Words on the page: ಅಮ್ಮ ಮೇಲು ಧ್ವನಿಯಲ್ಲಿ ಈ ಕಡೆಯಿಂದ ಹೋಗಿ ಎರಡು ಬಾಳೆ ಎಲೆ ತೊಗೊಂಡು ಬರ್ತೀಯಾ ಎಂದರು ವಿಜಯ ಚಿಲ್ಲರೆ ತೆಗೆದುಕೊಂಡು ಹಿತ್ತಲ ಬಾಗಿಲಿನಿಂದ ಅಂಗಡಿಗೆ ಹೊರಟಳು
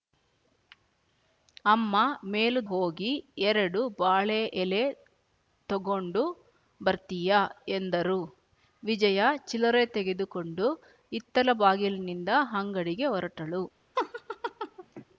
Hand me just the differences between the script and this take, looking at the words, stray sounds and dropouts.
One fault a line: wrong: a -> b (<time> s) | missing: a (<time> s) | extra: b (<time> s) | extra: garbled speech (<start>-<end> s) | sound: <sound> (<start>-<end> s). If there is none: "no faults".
missing: ಧ್ವನಿಯಲ್ಲಿ ಈ ಕಡೆಯಿಂದ (2.6 s)
sound: laugh (14.0-15.1 s)